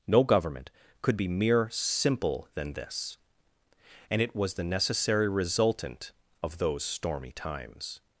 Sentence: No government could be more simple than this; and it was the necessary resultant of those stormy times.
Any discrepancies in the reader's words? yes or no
yes